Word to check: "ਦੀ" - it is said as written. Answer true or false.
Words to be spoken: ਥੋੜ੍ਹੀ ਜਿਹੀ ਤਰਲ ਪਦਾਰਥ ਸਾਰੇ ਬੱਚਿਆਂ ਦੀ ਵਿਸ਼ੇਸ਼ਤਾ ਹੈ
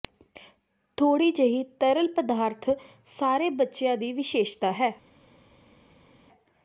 true